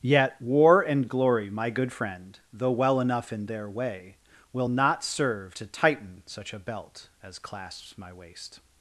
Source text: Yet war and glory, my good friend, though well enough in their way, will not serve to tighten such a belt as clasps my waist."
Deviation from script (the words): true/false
false